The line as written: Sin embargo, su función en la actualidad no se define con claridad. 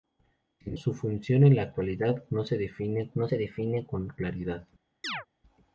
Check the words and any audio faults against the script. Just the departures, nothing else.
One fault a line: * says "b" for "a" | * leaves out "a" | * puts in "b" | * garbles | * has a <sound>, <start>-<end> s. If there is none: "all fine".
* leaves out "embargo"
* puts in "no se define"
* has a chirp, 5.0-5.3 s